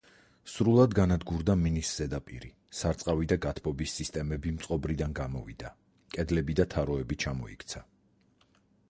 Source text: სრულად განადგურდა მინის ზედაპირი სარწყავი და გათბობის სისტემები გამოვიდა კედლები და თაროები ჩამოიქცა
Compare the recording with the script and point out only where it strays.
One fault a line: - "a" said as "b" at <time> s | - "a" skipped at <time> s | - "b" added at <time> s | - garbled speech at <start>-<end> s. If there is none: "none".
- "მწყობრიდან" added at 4.6 s